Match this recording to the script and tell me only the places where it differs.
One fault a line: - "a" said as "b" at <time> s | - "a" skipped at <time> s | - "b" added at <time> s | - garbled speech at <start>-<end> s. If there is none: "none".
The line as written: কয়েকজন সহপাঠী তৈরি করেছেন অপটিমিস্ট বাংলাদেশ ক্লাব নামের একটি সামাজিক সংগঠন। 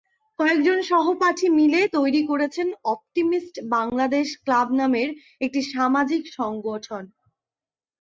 - "মিলে" added at 1.6 s